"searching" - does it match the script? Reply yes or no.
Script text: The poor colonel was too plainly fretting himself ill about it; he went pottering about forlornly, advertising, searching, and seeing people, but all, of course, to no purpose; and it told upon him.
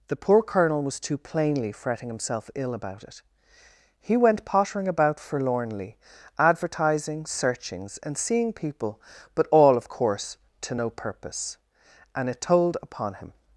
no